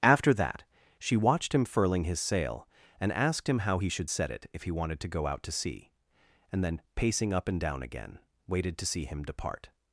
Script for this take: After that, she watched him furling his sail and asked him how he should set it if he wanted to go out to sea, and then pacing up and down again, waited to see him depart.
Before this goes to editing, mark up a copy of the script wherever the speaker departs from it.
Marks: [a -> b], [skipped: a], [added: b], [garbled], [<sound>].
After that, she watched him furling his sail and asked him how he should set it if he wanted to go out to sea, and then pacing up and down again, waited to see him depart.